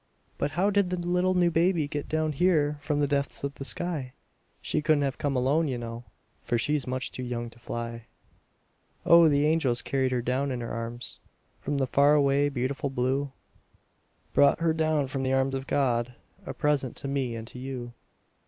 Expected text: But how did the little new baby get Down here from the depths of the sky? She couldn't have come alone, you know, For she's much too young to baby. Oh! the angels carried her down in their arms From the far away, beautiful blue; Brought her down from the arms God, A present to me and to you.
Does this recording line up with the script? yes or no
no